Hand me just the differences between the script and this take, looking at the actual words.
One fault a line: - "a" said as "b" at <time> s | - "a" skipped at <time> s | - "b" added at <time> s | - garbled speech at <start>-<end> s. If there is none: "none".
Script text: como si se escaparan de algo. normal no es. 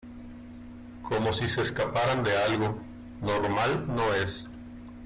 none